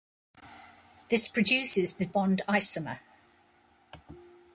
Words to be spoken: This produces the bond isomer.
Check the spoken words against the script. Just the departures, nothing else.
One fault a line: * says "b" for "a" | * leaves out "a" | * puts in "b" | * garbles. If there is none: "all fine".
all fine